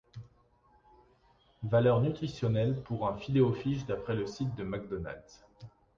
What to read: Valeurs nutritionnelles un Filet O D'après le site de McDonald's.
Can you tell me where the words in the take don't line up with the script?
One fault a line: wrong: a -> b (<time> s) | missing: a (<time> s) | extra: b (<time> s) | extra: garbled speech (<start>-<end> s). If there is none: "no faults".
extra: pour (2.8 s)
extra: Fish (3.5 s)